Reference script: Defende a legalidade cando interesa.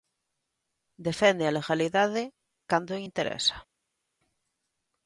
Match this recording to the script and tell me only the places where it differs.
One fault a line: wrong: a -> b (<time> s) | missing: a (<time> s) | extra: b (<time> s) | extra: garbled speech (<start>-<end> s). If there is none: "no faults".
no faults